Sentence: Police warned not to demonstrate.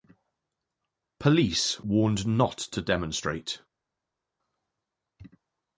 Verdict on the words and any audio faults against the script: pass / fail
pass